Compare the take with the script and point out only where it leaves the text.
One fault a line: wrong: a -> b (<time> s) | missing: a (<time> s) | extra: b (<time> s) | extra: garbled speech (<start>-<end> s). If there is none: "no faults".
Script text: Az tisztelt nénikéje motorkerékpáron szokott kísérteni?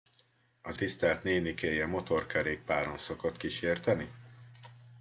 no faults